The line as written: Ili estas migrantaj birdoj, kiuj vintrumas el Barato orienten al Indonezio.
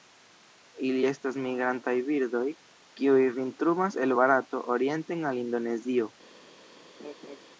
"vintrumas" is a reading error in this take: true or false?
false